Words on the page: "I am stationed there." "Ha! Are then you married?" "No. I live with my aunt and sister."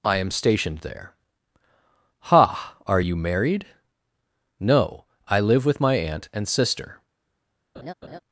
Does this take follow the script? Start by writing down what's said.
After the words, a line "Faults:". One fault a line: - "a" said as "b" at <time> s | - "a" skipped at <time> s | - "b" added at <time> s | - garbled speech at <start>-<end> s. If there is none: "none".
"I am stationed there." "Ha! Are you married?" "No. I live with my aunt and sister."
Faults:
- "then" skipped at 3.0 s